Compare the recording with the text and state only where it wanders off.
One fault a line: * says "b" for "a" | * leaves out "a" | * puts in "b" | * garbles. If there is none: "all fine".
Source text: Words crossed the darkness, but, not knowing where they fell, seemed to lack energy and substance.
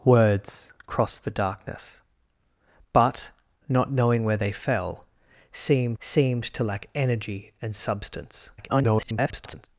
* puts in "seemed"
* garbles